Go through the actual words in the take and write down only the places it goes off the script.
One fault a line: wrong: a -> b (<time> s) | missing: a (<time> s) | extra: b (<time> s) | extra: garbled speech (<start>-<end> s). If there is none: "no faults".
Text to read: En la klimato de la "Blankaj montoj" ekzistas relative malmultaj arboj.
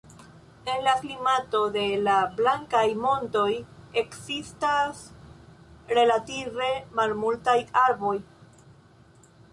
no faults